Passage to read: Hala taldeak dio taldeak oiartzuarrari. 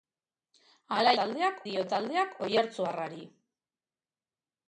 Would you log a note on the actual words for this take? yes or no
no